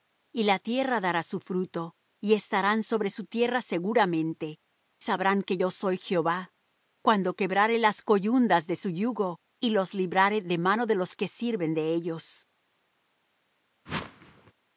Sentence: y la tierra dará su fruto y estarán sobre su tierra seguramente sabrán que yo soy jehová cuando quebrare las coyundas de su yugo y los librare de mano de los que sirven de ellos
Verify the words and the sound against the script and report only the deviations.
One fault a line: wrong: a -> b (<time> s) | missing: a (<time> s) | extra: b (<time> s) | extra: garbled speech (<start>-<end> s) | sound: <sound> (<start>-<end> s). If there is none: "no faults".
sound: whoosh (13.9-14.5 s)